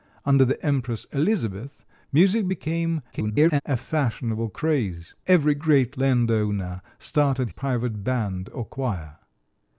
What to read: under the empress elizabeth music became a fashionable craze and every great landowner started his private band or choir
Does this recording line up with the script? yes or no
no